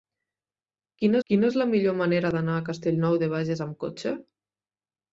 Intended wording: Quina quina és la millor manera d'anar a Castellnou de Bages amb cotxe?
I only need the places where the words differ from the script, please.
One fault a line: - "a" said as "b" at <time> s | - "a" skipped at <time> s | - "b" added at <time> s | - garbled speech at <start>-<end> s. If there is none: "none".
none